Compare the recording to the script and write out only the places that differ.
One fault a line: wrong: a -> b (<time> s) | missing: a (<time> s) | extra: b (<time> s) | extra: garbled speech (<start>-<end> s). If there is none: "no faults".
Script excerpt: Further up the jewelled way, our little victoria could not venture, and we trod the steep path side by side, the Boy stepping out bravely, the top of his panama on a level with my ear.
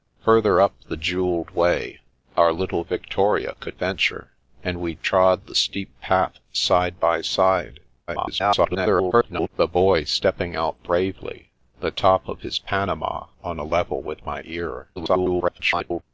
missing: not (3.8 s)
extra: garbled speech (8.1-9.5 s)
extra: garbled speech (15.0-16.0 s)